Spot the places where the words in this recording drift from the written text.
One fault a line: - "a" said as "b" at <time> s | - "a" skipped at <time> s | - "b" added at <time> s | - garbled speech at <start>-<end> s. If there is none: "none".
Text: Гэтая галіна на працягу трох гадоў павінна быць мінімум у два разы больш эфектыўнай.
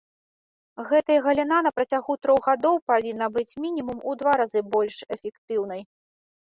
none